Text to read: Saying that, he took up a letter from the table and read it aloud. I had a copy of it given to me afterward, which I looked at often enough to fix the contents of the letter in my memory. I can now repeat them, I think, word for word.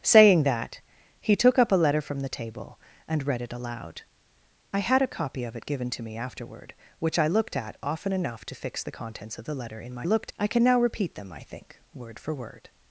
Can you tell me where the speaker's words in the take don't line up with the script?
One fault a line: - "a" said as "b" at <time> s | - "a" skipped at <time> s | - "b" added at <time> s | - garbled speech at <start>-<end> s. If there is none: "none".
- "memory" said as "looked" at 10.0 s